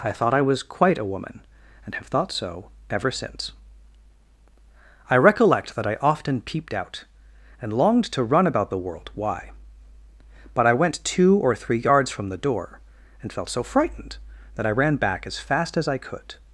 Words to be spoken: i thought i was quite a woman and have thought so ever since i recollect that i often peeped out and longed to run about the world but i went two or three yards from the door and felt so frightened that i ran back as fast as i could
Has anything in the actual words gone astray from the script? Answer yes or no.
yes